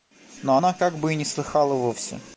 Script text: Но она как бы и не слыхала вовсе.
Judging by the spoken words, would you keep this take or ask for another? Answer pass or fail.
pass